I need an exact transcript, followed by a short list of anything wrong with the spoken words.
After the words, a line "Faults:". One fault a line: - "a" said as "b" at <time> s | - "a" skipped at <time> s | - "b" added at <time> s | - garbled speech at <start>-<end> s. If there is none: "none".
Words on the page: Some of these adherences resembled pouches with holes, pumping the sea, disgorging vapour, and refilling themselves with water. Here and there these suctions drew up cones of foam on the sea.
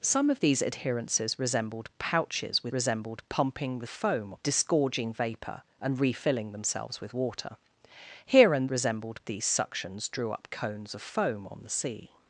Some of these adherences resembled pouches with resembled, pumping the foam, disgorging vapour, and refilling themselves with water. Here and resembled these suctions drew up cones of foam on the sea.
Faults:
- "holes" said as "resembled" at 2.7 s
- "sea" said as "foam" at 3.9 s
- "there" said as "resembled" at 8.7 s